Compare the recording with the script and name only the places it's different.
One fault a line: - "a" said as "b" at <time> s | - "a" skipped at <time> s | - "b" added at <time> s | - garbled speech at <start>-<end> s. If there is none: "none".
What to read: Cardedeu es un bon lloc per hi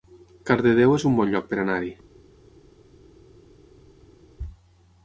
- "anar" added at 1.6 s